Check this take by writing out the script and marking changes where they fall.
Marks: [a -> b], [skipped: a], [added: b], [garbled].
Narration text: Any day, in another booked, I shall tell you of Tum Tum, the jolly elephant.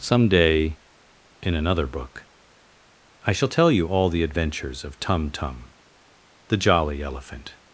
[Any -> Some] day, in another [booked, -> book] I shall tell you [added: all the adventures] of Tum Tum, the jolly elephant.